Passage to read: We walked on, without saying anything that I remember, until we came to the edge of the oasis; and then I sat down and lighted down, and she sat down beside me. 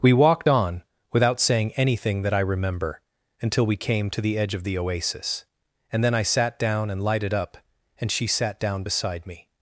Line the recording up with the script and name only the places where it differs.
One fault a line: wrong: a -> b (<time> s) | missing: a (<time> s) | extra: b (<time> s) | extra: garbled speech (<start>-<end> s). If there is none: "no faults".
wrong: down -> up (7.3 s)